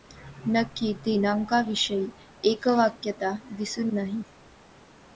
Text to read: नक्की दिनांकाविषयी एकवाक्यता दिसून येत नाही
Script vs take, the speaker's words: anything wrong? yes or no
yes